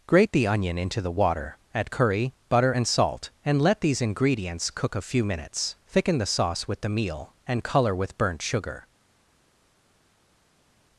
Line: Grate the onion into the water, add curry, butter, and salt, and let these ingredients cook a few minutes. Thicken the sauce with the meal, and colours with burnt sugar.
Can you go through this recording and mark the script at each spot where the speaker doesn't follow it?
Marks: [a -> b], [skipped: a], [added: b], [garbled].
Grate the onion into the water, add curry, butter, and salt, and let these ingredients cook a few minutes. Thicken the sauce with the meal, and [colours -> colour] with burnt sugar.